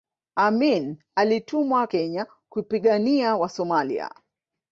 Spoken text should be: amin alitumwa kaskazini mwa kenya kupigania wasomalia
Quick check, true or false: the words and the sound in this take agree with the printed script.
false